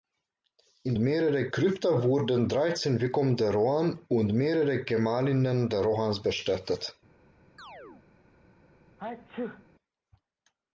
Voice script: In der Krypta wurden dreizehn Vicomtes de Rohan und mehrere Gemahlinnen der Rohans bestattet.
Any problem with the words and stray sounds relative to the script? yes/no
yes